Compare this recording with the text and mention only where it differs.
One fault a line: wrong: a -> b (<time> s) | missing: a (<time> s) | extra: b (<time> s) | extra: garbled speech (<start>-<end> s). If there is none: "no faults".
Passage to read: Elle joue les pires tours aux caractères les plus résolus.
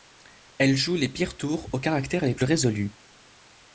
no faults